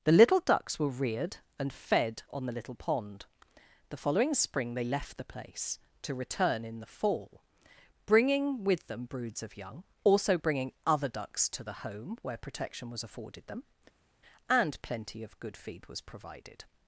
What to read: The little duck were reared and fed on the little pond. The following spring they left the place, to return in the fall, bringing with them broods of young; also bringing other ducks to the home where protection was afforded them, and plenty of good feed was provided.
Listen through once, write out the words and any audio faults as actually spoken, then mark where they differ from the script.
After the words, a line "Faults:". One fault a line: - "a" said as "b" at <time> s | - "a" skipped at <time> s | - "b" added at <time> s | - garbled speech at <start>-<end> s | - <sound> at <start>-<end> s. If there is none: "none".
The little ducks were reared and fed on the little pond. The following spring they left the place, to return in the fall, bringing with them broods of young; also bringing other ducks to the home where protection was afforded them, and plenty of good feed was provided.
Faults:
- "duck" said as "ducks" at 0.4 s